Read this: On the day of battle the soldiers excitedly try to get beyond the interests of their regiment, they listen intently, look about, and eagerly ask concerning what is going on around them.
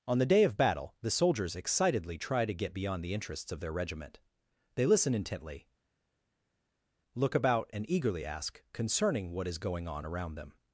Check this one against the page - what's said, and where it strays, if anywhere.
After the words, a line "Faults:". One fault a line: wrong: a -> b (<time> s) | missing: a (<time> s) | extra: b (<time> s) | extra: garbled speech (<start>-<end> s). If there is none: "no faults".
On the day of battle the soldiers excitedly try to get beyond the interests of their regiment, they listen intently, look about, and eagerly ask concerning what is going on around them.
Faults:
no faults